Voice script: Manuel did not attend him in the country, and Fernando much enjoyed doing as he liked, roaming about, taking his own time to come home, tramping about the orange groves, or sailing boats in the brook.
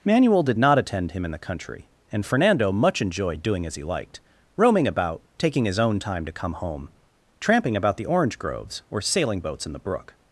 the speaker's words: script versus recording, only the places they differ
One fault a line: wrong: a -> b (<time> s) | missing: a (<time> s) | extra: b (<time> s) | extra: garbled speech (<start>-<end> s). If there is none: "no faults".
no faults